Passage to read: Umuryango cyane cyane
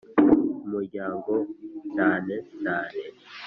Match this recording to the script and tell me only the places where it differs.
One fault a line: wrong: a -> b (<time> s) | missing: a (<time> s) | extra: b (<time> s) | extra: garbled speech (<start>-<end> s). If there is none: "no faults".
no faults